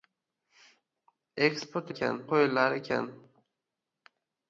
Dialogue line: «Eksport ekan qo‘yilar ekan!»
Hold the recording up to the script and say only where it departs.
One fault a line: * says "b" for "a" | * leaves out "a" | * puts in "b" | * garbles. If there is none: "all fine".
all fine